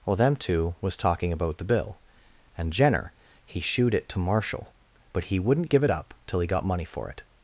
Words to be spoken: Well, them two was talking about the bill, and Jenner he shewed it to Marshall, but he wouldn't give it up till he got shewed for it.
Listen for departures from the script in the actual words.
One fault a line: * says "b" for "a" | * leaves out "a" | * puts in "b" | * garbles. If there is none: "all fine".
* says "money" for "shewed"